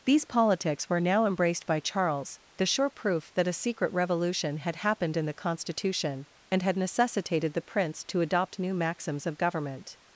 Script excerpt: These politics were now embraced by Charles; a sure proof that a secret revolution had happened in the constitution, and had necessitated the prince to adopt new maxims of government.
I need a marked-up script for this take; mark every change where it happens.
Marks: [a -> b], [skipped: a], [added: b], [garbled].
These politics were now embraced by Charles; [a -> the] sure proof that a secret revolution had happened in the constitution, and had necessitated the prince to adopt new maxims of government.